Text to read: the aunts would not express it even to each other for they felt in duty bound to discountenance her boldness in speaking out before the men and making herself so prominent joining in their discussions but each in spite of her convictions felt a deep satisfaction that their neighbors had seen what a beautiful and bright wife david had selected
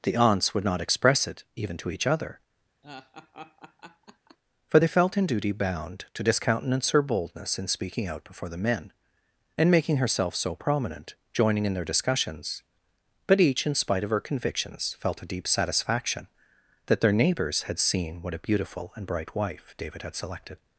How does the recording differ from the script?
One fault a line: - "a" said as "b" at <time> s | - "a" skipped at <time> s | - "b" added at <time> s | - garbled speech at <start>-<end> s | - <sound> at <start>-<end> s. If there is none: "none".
- laugh at 2.8-4.4 s